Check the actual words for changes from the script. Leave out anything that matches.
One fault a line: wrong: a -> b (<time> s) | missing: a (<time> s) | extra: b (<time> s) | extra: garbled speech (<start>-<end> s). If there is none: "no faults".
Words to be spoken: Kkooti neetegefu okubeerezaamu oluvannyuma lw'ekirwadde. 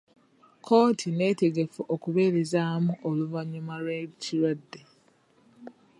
no faults